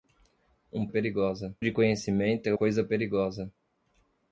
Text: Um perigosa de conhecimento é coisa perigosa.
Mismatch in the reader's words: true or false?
false